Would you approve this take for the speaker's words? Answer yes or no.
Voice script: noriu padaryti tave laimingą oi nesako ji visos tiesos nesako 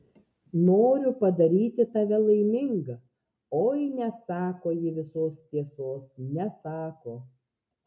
yes